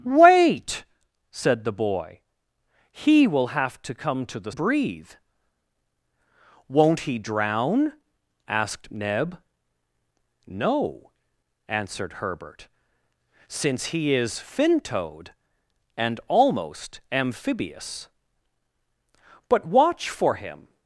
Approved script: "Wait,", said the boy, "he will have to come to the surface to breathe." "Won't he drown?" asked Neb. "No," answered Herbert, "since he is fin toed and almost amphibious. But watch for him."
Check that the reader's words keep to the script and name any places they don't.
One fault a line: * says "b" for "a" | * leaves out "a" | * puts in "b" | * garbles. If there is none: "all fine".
* leaves out "surface to"